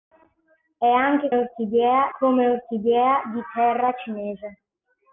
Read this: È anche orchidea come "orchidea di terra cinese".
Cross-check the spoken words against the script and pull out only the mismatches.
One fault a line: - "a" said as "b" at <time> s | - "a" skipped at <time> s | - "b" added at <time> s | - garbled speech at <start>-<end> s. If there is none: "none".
none